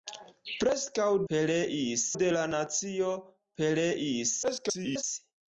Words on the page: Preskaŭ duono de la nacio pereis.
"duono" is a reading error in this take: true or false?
true